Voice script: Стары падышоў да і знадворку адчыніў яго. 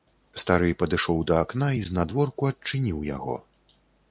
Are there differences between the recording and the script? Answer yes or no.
yes